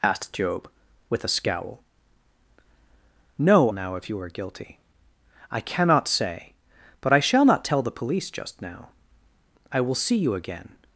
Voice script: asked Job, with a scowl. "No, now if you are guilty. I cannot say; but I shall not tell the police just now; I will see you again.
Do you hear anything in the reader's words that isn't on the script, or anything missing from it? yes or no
no